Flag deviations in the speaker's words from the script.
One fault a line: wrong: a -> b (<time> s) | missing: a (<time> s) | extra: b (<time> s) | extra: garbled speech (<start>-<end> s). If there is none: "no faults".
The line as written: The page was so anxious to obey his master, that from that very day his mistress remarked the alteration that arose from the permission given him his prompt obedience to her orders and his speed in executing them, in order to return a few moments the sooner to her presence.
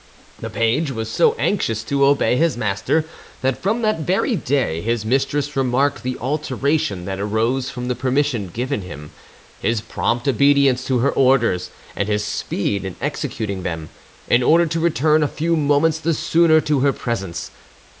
no faults